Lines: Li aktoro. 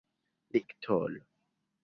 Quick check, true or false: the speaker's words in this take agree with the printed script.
true